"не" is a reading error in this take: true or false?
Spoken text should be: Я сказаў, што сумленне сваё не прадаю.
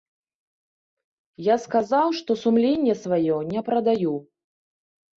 false